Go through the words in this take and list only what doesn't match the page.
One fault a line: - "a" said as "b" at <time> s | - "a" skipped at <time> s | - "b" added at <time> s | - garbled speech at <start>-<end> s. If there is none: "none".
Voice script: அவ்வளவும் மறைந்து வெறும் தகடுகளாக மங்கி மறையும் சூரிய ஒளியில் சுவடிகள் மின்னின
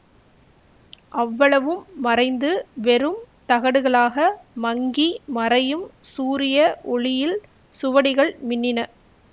none